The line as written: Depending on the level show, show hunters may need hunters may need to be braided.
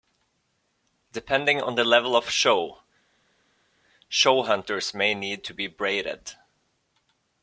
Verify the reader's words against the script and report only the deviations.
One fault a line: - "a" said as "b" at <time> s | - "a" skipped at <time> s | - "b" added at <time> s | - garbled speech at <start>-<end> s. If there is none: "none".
- "of" added at 2.1 s
- "hunters may need" skipped at 5.4 s